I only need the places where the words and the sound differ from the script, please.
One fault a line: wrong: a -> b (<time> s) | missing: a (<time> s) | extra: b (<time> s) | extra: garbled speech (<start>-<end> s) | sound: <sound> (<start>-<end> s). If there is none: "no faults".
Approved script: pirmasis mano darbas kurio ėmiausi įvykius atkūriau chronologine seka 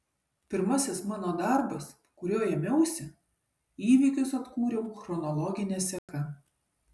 sound: dropout (6.0-6.1 s)